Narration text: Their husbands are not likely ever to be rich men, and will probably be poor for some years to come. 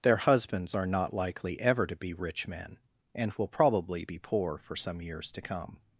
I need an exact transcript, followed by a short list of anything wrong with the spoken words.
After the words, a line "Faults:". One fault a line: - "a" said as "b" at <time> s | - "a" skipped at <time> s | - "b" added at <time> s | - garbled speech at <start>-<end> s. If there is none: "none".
Their husbands are not likely ever to be rich men, and will probably be poor for some years to come.
Faults:
none